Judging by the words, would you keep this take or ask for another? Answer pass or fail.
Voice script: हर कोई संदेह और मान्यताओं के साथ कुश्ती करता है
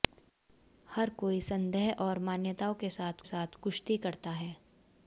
fail